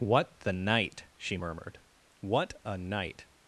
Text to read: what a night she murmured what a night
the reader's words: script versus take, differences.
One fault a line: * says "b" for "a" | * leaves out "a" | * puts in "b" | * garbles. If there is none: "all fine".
* says "the" for "a"